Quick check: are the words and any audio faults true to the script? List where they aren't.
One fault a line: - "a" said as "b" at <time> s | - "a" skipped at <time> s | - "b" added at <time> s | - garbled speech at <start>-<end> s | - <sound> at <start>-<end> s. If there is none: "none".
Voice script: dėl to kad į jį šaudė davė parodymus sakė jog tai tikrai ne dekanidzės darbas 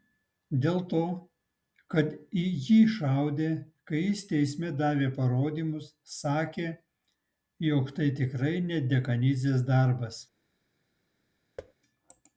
- "kai jis teisme" added at 3.9 s
- thud at 11.6-11.7 s